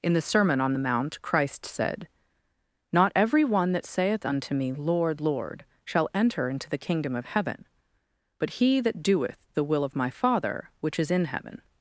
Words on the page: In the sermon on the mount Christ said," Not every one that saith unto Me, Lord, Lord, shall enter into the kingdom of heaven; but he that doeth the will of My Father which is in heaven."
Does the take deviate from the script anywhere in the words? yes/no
no